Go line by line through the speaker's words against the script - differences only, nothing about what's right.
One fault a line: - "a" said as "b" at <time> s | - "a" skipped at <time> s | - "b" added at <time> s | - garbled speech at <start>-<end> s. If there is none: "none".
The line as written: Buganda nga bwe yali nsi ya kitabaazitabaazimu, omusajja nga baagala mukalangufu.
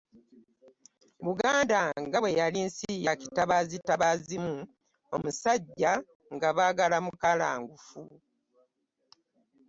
none